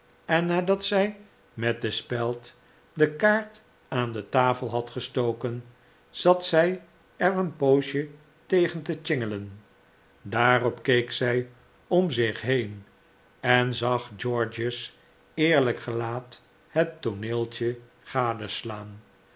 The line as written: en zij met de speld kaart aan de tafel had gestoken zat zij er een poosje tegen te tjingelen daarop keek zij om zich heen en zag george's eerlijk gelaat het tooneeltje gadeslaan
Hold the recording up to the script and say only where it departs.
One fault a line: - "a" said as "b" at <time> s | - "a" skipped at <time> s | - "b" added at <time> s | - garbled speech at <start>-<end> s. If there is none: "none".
- "nadat" added at 0.5 s
- "de" added at 2.9 s